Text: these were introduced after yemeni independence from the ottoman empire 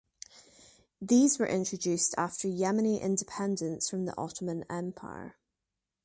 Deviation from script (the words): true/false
false